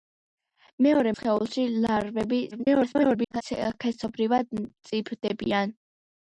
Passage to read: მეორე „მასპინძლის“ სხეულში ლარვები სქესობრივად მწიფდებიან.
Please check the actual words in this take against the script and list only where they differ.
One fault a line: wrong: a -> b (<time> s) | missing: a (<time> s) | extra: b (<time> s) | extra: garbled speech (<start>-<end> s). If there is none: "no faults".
missing: მასპინძლის (1.1 s)
extra: garbled speech (2.5-3.4 s)